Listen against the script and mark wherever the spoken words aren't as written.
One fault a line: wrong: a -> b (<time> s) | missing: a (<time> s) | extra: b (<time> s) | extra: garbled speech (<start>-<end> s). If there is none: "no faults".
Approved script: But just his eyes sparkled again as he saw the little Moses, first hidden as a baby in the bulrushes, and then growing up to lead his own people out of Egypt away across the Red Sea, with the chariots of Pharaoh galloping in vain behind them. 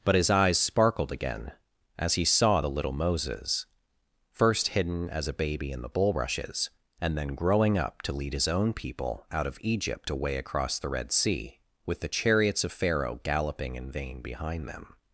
missing: just (0.1 s)